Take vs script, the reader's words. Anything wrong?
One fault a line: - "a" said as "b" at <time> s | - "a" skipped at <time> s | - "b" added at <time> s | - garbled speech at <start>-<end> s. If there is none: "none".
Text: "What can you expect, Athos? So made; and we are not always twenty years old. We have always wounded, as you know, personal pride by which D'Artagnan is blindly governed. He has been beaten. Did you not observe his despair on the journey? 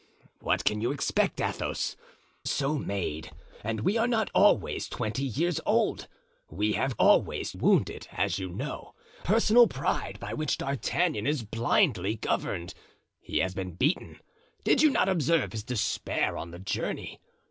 none